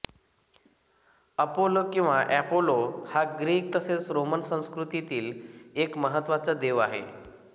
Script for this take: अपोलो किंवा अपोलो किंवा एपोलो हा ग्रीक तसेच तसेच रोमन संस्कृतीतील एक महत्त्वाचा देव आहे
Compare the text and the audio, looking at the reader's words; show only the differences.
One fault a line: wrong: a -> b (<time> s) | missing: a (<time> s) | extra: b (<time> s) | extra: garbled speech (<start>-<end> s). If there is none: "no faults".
missing: अपोलो किंवा (2.1 s)
missing: तसेच (4.1 s)